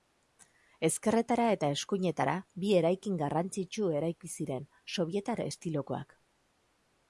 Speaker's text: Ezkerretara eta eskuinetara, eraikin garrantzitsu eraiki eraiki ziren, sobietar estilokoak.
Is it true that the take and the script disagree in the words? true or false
true